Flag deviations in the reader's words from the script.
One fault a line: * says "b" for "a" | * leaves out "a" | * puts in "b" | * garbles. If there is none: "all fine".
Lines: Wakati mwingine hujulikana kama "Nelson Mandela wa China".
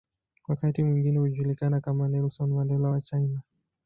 all fine